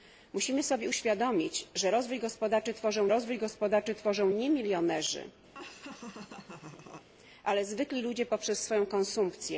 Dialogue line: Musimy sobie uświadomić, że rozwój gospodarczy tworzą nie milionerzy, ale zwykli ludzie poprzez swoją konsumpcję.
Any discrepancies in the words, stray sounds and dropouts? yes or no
yes